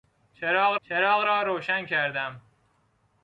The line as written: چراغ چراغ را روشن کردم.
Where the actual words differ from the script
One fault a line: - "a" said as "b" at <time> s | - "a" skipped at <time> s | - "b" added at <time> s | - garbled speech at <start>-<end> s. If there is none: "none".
none